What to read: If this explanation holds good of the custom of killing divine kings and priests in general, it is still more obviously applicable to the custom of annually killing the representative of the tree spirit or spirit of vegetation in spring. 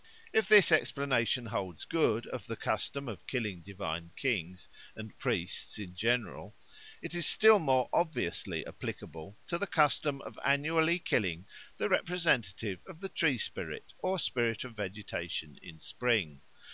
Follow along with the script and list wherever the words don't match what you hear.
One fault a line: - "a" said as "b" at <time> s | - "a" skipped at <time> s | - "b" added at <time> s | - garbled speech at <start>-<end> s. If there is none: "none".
none